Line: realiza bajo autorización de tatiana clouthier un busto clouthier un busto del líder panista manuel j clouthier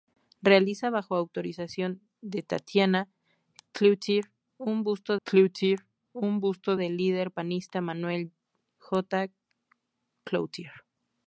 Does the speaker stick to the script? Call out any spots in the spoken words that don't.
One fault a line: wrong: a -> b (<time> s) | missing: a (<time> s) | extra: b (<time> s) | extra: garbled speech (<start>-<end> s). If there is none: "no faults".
no faults